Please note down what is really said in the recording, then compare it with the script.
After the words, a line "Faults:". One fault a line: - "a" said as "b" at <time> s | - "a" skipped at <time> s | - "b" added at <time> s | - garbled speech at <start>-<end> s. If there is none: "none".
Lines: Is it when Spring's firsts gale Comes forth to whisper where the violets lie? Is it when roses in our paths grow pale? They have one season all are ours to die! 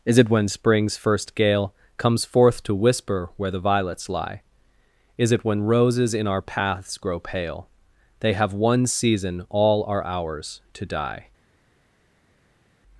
Is it when Spring's first gale Comes forth to whisper where the violets lie? Is it when roses in our paths grow pale? They have one season all are ours to die!
Faults:
- "firsts" said as "first" at 1.0 s